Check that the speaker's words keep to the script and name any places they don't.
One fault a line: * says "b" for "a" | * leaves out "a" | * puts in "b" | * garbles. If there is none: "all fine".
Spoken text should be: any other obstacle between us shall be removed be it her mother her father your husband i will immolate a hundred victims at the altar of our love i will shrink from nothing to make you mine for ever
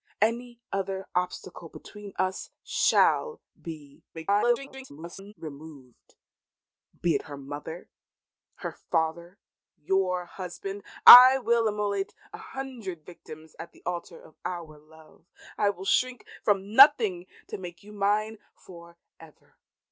* garbles